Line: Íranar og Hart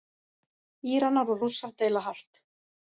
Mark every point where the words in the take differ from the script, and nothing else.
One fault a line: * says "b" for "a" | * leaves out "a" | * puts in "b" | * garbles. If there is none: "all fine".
* puts in "Rússar deila"